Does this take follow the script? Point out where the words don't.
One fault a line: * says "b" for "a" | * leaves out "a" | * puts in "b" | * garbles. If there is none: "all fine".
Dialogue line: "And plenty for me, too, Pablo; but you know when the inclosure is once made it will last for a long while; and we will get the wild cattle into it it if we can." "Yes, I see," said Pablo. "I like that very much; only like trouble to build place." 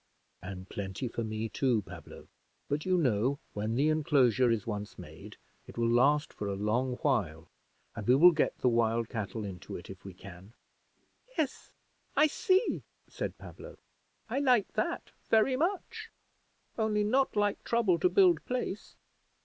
* leaves out "it"
* puts in "not"